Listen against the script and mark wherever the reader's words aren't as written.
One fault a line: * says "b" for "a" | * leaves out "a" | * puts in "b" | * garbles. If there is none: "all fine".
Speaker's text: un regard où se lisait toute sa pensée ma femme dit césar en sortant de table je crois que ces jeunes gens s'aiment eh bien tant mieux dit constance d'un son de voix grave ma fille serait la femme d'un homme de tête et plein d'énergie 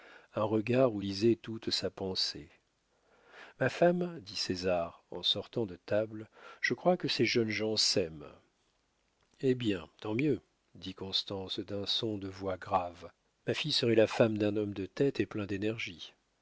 * leaves out "se"